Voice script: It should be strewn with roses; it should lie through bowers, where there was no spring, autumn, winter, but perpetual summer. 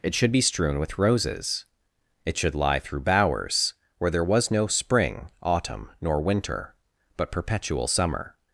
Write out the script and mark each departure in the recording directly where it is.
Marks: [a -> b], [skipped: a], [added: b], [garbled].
It should be strewn with roses; it should lie through bowers, where there was no spring, autumn, [added: nor] winter, but perpetual summer.